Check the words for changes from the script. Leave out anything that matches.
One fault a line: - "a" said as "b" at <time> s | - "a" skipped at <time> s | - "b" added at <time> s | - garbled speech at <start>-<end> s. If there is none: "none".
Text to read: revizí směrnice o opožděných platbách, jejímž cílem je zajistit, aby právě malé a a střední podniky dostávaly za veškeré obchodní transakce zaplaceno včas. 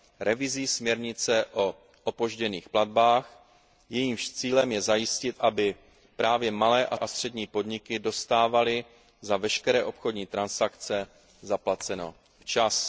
none